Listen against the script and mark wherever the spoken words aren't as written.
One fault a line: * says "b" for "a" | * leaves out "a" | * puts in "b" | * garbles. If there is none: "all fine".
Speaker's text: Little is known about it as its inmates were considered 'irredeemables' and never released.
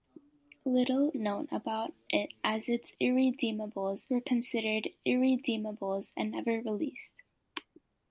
* leaves out "is"
* says "irredeemables" for "inmates"